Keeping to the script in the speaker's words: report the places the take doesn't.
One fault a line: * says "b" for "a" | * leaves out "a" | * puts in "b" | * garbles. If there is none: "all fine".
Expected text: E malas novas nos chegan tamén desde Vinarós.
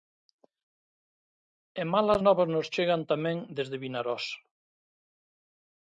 all fine